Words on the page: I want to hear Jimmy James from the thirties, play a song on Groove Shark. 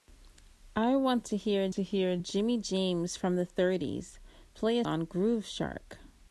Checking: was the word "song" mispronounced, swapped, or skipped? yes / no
yes